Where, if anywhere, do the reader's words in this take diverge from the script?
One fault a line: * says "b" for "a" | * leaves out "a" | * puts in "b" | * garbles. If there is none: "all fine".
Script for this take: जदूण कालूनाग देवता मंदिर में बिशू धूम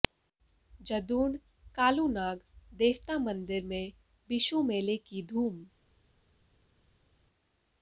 * puts in "मेले की"